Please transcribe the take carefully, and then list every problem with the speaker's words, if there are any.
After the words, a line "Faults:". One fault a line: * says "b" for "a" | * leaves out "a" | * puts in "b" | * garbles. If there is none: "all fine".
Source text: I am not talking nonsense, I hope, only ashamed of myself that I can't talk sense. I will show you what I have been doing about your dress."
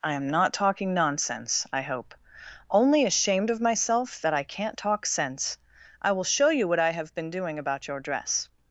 I am not talking nonsense, I hope, only ashamed of myself that I can't talk sense. I will show you what I have been doing about your dress."
Faults:
all fine